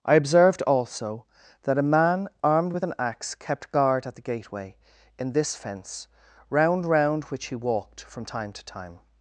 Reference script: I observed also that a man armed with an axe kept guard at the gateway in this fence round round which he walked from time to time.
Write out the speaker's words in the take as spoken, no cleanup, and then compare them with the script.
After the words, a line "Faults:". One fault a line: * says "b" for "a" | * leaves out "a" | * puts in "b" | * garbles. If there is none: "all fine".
I observed also that a man armed with an axe kept guard at the gateway in this fence round round which he walked from time to time.
Faults:
all fine